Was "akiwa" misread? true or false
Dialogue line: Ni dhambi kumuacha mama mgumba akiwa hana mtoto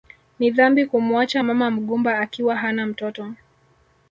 false